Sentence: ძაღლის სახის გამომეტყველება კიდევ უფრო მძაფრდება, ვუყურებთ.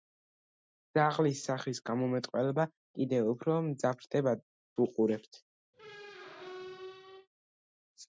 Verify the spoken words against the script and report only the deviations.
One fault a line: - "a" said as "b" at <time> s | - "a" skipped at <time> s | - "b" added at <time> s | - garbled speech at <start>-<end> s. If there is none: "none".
none